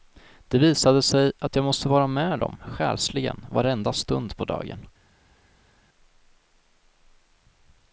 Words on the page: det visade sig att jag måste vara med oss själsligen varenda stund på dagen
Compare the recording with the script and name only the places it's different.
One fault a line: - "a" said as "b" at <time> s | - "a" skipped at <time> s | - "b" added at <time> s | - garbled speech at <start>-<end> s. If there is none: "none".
- "oss" said as "dem" at 2.4 s